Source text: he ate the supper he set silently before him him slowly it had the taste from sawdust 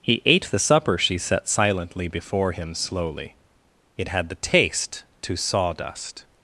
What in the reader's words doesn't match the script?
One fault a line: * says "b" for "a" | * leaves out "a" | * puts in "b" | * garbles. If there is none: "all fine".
* says "she" for "he"
* leaves out "him"
* says "to" for "from"